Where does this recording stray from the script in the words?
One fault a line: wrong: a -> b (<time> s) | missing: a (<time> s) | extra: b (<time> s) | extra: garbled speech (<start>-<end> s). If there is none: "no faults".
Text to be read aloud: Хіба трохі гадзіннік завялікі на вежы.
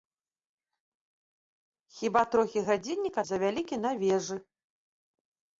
no faults